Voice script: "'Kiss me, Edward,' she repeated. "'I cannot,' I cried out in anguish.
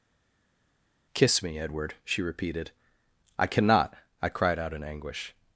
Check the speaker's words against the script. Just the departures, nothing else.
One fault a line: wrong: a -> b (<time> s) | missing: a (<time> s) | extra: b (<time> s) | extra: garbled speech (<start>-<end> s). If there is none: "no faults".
no faults